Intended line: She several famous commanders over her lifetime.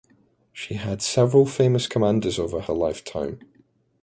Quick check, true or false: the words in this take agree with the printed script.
false